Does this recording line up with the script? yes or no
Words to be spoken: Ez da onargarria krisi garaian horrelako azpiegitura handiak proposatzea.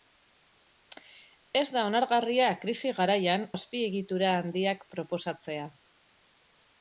no